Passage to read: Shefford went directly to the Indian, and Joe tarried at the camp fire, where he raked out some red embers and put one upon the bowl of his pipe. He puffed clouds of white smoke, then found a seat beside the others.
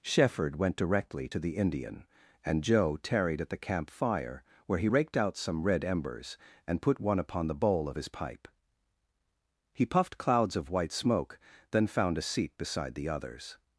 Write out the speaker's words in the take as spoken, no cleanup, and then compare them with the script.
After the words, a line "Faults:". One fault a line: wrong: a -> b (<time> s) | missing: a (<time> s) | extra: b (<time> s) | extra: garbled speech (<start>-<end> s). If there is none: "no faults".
Shefford went directly to the Indian, and Joe tarried at the camp fire, where he raked out some red embers and put one upon the bowl of his pipe. He puffed clouds of white smoke, then found a seat beside the others.
Faults:
no faults